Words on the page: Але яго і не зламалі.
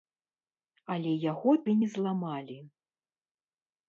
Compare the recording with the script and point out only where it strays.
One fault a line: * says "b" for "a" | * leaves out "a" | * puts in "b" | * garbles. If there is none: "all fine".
all fine